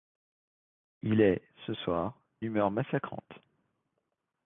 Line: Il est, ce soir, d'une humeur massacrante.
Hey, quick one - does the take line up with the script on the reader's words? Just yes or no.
no